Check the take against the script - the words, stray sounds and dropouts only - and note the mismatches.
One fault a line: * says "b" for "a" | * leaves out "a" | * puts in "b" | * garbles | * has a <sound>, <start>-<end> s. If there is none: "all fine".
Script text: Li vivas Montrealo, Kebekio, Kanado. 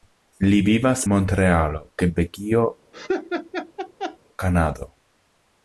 * has a laugh, 2.9-4.2 s